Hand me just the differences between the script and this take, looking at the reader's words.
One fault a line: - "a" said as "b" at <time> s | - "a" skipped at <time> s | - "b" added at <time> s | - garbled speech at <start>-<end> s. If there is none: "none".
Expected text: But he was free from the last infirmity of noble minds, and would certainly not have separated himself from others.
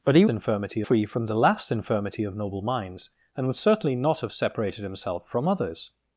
- "was" said as "infirmity" at 0.3 s